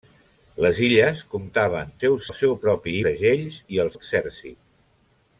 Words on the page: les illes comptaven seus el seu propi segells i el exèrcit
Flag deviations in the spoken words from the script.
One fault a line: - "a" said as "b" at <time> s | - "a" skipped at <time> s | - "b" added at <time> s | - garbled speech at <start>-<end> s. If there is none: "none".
none